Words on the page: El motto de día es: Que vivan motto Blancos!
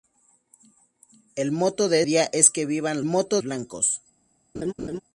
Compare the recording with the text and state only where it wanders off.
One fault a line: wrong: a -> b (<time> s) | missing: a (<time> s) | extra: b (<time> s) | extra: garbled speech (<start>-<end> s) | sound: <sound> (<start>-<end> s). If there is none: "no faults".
sound: laugh (4.5-5.0 s)